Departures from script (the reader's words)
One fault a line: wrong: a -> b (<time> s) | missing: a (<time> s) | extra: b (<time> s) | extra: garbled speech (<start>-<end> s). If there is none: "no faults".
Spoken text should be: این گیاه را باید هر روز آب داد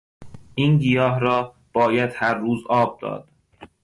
no faults